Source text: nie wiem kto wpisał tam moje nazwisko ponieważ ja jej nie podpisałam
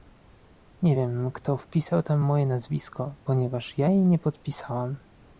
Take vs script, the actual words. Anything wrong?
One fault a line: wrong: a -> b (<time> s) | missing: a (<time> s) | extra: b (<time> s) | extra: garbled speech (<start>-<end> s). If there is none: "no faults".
no faults